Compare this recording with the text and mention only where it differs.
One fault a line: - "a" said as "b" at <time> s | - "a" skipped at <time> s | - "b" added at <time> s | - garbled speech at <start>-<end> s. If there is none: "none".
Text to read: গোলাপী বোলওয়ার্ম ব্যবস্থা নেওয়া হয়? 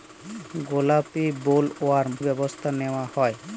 none